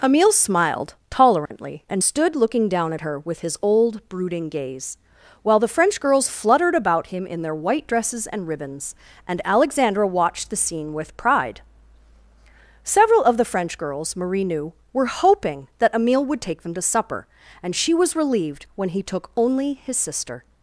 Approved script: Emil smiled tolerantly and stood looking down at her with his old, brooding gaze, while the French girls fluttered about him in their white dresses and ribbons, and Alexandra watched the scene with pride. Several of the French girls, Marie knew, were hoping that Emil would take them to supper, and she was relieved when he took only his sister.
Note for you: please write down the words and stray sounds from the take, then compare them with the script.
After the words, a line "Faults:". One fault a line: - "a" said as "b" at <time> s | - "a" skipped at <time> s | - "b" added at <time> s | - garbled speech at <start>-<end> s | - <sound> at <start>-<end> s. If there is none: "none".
Emil smiled tolerantly and stood looking down at her with his old, brooding gaze, while the French girls fluttered about him in their white dresses and ribbons, and Alexandra watched the scene with pride. Several of the French girls, Marie knew, were hoping that Emil would take them to supper, and she was relieved when he took only his sister.
Faults:
- dropout at 1.5-1.5 s